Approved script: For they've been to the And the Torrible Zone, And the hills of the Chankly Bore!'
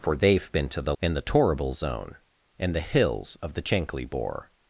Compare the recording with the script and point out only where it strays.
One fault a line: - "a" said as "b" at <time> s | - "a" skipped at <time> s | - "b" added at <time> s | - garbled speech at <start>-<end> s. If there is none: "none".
none